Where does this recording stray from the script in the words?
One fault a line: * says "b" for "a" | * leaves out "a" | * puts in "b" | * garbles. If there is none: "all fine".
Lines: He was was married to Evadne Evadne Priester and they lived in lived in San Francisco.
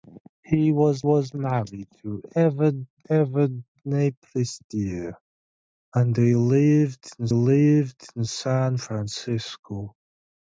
all fine